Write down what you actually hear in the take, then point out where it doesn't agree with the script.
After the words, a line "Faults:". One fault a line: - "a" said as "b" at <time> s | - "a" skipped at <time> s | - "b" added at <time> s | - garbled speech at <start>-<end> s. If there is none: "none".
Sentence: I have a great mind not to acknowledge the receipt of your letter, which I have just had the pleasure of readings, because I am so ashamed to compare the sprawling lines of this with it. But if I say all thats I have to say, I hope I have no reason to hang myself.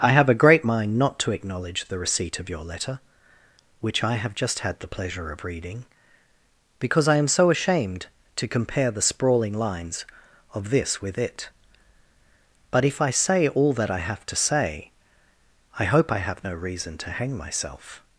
I have a great mind not to acknowledge the receipt of your letter, which I have just had the pleasure of reading, because I am so ashamed to compare the sprawling lines of this with it. But if I say all that I have to say, I hope I have no reason to hang myself.
Faults:
- "readings" said as "reading" at 5.4 s
- "thats" said as "that" at 13.7 s